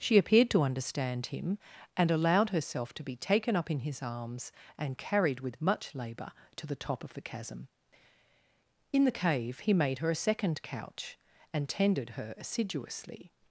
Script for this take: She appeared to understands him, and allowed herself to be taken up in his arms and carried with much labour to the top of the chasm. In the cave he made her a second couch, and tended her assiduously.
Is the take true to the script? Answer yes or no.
no